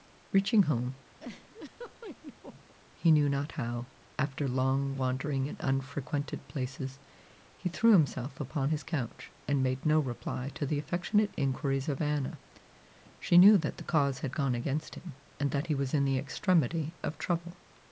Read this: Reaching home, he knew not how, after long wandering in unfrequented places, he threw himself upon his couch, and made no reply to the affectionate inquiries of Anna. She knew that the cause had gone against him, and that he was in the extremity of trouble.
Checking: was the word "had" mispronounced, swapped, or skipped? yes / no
no